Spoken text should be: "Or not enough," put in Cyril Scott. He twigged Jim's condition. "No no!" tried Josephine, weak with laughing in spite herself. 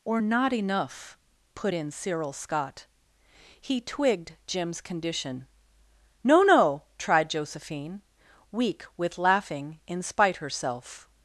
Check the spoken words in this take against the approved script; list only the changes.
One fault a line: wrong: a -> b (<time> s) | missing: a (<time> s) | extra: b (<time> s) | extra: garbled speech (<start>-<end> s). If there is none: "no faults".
no faults